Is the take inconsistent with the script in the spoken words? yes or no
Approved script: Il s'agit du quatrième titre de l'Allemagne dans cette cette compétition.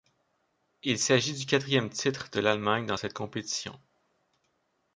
yes